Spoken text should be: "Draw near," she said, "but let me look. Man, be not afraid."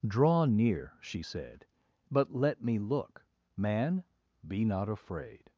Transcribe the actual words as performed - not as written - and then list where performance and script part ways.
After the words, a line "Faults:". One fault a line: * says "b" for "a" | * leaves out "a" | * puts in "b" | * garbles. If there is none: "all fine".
"Draw near," she said, "but let me look. Man, be not afraid."
Faults:
all fine